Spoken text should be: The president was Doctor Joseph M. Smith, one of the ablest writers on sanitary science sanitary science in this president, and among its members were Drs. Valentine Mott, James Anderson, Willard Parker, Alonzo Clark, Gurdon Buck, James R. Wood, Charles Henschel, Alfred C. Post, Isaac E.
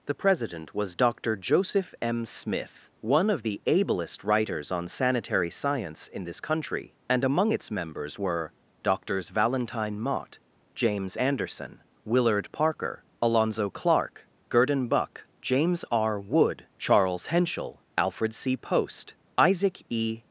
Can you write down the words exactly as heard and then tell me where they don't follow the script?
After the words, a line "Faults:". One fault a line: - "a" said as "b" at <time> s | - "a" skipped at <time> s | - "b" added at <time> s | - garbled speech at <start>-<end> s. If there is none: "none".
The president was Doctor Joseph M. Smith, one of the ablest writers on sanitary science in this country, and among its members were Drs. Valentine Mott, James Anderson, Willard Parker, Alonzo Clark, Gurdon Buck, James R. Wood, Charles Henschel, Alfred C. Post, Isaac E.
Faults:
- "sanitary science" skipped at 6.1 s
- "president" said as "country" at 6.4 s